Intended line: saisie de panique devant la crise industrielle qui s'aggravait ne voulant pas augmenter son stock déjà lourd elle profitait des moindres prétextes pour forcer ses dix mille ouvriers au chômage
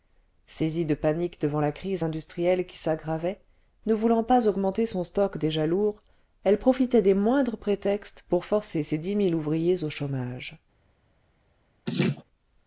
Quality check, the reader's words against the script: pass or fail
pass